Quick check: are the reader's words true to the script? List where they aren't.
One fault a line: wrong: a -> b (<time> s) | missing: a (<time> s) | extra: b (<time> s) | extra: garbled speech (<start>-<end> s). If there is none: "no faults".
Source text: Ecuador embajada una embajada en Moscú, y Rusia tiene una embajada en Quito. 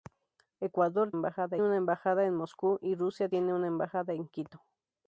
no faults